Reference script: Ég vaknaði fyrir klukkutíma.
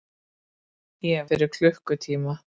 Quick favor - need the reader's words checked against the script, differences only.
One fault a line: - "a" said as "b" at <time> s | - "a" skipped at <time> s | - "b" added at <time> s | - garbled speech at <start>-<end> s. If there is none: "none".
- "vaknaði" skipped at 1.3 s